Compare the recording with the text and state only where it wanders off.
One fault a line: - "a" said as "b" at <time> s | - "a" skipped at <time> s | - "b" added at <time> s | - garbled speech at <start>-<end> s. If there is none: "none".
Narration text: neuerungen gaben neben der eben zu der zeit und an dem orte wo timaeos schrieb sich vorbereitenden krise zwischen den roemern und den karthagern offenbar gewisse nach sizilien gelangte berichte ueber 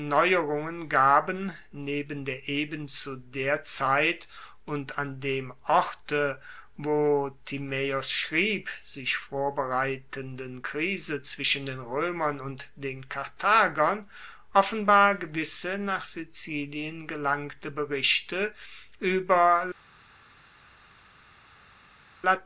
none